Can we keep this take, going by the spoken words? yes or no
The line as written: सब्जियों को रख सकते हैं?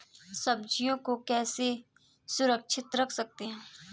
no